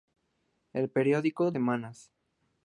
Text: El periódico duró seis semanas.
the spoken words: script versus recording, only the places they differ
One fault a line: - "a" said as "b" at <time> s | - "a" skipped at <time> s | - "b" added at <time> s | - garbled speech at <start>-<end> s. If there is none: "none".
- "duró seis" skipped at 1.5 s